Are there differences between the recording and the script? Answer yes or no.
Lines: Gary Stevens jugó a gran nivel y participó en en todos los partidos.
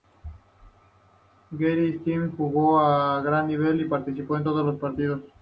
yes